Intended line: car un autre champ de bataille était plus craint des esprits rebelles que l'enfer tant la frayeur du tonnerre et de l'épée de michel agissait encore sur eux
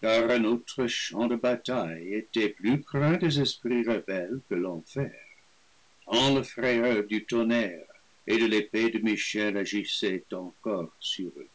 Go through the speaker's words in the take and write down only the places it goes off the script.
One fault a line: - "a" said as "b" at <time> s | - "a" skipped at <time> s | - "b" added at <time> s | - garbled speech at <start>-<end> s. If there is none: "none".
none